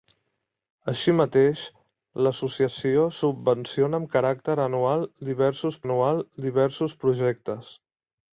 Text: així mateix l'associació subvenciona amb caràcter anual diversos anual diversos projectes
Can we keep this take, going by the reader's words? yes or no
yes